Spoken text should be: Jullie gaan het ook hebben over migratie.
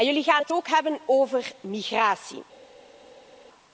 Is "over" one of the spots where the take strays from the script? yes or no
no